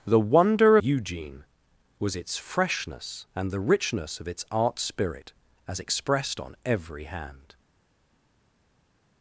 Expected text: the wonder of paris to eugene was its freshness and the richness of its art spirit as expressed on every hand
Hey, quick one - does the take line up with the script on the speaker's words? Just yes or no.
no